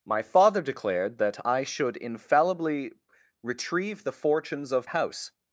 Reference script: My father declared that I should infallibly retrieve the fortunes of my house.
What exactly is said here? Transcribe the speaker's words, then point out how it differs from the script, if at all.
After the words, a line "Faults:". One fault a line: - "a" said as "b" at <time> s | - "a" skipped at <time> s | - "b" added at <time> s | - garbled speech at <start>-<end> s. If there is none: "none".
My father declared that I should infallibly retrieve the fortunes of house.
Faults:
- "my" skipped at 4.9 s